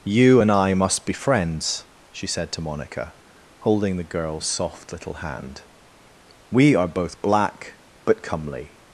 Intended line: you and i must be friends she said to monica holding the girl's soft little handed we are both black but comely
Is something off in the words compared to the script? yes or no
yes